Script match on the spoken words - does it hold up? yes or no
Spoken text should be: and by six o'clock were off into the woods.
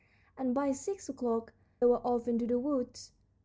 yes